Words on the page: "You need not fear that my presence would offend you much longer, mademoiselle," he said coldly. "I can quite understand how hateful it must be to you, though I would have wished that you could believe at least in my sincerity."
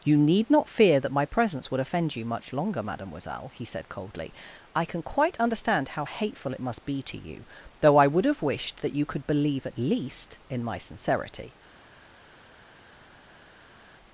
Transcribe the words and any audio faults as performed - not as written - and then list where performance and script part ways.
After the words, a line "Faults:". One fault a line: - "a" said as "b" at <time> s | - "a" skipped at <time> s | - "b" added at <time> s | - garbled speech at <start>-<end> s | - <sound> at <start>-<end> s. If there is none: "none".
"You need not fear that my presence would offend you much longer, mademoiselle," he said coldly. "I can quite understand how hateful it must be to you, though I would have wished that you could believe at least in my sincerity."
Faults:
none